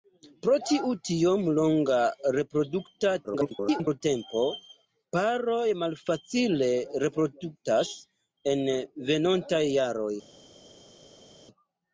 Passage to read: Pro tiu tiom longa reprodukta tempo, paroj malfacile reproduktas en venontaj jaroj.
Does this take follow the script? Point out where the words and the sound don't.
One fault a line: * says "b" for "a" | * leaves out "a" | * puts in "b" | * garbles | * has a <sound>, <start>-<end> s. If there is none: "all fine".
* garbles